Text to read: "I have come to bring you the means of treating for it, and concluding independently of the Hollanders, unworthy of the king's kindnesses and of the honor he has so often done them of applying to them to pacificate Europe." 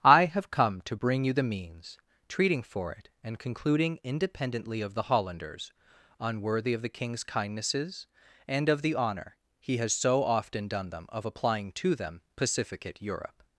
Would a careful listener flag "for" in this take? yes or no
no